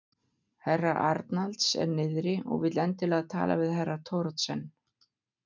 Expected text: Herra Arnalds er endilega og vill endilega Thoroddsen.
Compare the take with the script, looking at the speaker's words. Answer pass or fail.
fail